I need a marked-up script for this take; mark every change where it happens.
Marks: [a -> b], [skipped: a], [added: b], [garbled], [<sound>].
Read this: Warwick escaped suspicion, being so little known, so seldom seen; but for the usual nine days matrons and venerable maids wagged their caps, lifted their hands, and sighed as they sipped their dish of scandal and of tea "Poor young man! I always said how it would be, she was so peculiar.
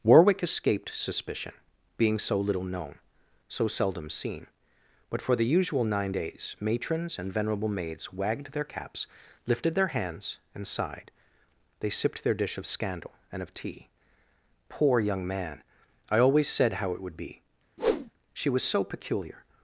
Warwick escaped suspicion, being so little known, so seldom seen; but for the usual nine days matrons and venerable maids wagged their caps, lifted their hands, and sighed [skipped: as] they sipped their dish of scandal and of tea "Poor young man! I always said how it would be, [whoosh] she was so peculiar.